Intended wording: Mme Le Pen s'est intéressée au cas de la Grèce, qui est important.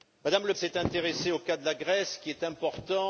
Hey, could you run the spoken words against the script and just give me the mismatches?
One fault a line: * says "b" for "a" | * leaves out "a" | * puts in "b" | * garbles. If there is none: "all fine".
* leaves out "Pen"